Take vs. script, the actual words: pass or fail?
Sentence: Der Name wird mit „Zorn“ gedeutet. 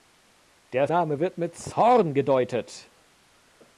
pass